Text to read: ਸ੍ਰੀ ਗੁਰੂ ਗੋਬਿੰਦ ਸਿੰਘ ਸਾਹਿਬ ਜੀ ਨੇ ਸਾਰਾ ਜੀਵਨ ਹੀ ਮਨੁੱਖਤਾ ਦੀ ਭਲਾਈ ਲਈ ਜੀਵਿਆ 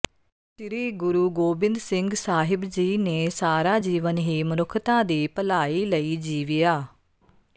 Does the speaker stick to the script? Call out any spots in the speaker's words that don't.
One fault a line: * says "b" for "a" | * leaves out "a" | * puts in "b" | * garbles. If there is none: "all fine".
all fine